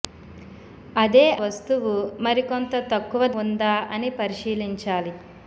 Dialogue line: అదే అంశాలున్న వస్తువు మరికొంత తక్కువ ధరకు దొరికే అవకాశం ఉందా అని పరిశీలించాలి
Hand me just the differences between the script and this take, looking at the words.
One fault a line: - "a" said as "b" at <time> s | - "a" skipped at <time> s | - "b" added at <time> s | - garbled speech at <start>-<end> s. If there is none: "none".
- "అంశాలున్న" skipped at 1.2 s
- "ధరకు దొరికే అవకాశం" skipped at 3.3 s